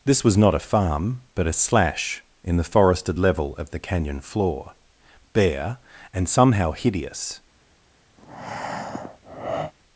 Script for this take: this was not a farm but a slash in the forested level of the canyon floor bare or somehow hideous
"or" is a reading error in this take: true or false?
true